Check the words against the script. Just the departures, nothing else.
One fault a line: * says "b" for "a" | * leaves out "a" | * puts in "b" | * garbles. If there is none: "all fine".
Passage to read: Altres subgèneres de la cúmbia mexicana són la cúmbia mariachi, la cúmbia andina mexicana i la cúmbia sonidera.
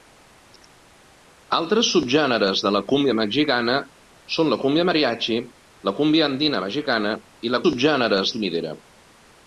* says "subgèneres" for "cúmbia"